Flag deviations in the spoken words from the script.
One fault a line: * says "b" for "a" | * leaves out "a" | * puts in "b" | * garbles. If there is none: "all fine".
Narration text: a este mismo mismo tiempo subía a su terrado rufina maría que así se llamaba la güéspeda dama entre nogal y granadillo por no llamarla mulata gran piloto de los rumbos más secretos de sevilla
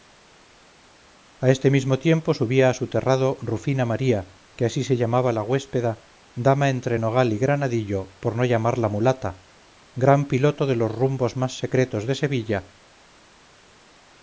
* leaves out "mismo"